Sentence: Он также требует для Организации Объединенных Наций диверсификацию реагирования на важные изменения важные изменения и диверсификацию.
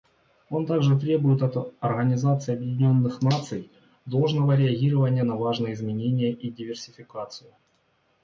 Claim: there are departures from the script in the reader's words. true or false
true